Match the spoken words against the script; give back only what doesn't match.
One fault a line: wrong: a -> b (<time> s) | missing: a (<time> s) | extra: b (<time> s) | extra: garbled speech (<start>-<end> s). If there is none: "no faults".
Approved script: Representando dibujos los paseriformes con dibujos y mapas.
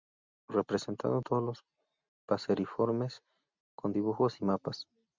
wrong: dibujos -> todos (1.2 s)